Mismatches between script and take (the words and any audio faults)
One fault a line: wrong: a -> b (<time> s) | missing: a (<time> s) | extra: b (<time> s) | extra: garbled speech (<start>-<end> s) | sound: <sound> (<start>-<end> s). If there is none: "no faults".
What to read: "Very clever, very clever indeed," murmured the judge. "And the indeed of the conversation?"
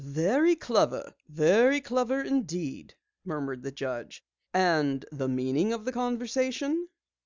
wrong: indeed -> meaning (5.3 s)